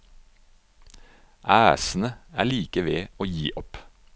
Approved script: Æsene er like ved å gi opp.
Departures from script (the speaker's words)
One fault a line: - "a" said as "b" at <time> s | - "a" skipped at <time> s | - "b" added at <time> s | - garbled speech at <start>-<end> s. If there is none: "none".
none